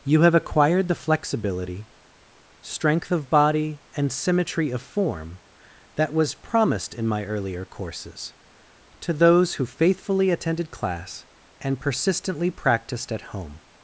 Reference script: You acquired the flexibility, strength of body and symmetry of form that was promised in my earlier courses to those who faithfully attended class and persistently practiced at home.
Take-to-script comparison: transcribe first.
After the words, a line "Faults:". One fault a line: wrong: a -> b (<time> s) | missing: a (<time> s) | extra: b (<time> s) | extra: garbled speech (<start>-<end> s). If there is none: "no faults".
You have acquired the flexibility, strength of body and symmetry of form that was promised in my earlier courses to those who faithfully attended class and persistently practiced at home.
Faults:
extra: have (0.2 s)